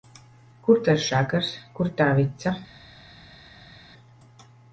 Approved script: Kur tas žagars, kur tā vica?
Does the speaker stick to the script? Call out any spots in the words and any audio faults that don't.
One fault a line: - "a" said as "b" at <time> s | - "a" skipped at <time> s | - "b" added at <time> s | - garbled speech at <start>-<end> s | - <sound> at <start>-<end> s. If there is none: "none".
none